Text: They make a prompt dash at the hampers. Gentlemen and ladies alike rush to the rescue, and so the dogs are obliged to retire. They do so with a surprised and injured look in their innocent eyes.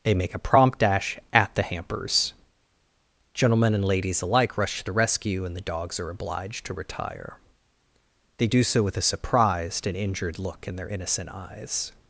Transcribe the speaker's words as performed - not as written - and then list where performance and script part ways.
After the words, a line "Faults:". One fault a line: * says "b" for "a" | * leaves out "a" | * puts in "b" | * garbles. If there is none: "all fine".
They make a prompt dash at the hampers. Gentlemen and ladies alike rush to the rescue, and the dogs are obliged to retire. They do so with a surprised and injured look in their innocent eyes.
Faults:
* leaves out "so"